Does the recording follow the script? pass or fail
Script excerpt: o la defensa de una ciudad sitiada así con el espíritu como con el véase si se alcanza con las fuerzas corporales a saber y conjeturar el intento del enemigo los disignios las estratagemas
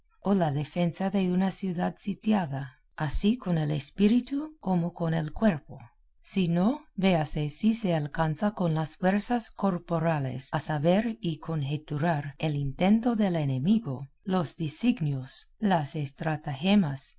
fail